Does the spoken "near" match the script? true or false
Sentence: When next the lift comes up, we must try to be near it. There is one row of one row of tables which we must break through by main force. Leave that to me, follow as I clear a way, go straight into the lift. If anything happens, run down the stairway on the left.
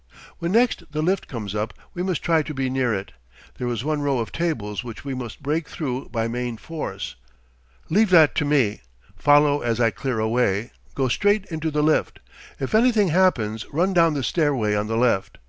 true